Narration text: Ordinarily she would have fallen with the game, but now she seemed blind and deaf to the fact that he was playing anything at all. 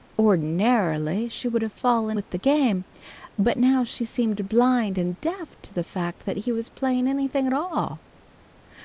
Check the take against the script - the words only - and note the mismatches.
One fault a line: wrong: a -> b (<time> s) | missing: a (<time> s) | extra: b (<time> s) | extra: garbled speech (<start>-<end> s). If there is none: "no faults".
no faults